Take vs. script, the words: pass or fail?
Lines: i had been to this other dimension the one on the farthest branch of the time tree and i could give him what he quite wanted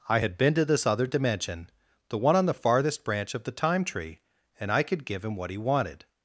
fail